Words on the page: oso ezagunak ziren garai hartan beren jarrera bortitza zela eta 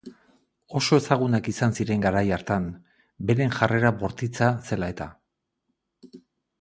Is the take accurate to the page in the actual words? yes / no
no